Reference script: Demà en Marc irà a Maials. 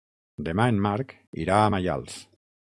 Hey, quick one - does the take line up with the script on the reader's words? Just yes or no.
yes